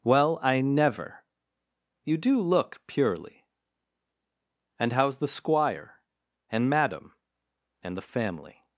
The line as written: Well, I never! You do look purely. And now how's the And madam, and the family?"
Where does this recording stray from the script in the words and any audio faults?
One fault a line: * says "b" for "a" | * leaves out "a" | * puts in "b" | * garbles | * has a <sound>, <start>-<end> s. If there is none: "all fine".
* leaves out "now"
* puts in "Squire"